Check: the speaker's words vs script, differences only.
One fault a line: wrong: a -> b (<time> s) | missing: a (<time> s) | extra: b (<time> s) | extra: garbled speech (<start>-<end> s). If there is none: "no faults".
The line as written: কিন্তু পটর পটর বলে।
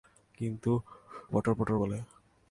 no faults